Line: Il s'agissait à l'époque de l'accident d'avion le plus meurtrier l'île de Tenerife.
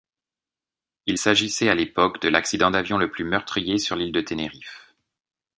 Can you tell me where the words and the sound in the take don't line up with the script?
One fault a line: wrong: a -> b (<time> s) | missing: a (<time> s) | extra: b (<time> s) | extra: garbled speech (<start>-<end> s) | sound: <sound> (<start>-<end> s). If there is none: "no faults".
extra: sur (3.8 s)